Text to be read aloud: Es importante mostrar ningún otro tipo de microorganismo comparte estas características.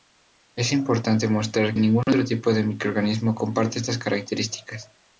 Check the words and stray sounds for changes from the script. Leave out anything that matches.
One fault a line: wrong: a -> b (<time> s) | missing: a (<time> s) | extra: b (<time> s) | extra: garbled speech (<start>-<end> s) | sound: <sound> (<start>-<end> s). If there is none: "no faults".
no faults